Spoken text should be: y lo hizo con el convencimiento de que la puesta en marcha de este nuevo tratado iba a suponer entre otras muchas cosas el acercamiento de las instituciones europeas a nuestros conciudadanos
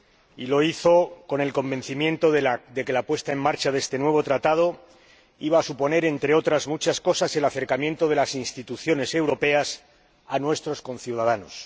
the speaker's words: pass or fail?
pass